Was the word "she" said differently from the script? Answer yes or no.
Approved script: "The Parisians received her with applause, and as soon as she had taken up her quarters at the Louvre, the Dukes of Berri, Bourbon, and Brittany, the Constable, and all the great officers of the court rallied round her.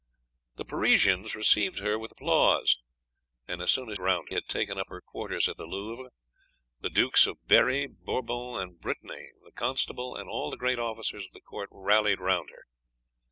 yes